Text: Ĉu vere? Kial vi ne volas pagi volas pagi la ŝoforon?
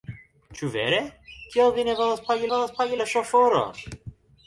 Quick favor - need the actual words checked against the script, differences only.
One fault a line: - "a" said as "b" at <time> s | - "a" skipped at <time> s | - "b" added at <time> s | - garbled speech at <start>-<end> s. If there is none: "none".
none